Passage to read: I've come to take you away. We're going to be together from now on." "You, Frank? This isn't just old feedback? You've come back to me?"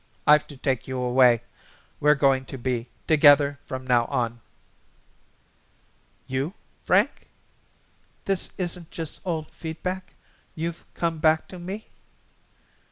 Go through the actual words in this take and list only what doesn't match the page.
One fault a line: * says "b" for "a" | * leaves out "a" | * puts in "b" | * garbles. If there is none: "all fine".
* leaves out "come"